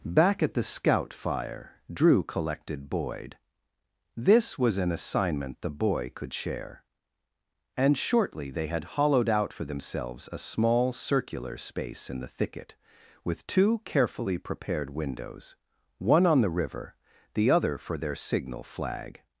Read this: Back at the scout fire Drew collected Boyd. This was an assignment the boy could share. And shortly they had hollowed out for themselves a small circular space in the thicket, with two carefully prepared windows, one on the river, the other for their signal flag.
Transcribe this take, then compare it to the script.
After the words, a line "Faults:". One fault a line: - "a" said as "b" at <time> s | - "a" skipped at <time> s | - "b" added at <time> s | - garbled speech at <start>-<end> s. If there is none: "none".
Back at the scout fire Drew collected Boyd. This was an assignment the boy could share. And shortly they had hollowed out for themselves a small circular space in the thicket, with two carefully prepared windows, one on the river, the other for their signal flag.
Faults:
none